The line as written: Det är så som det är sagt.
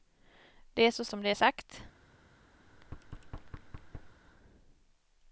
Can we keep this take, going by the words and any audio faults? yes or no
no